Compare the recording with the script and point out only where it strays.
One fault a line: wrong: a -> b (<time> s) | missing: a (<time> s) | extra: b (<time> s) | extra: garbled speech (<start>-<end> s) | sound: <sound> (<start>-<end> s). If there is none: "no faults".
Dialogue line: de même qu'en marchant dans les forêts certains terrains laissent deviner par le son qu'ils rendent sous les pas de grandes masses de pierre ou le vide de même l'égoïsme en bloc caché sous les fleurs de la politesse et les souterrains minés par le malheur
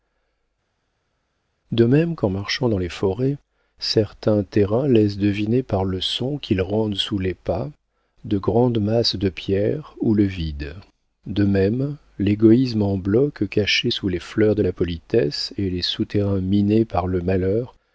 no faults